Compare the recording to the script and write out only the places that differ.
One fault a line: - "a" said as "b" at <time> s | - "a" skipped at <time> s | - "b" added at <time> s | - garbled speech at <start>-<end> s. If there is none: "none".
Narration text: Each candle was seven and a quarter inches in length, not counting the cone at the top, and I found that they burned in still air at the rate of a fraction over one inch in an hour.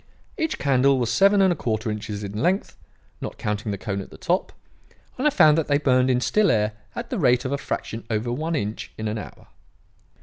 none